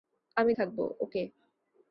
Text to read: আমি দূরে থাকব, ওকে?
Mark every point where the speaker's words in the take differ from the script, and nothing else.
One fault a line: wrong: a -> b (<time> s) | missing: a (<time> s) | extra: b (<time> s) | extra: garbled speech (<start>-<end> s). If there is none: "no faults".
missing: দূরে (0.5 s)